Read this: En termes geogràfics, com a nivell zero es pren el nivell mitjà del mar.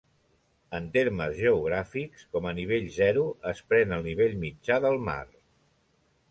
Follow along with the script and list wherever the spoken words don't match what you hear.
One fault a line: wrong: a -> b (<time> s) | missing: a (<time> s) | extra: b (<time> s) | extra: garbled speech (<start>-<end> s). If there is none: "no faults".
no faults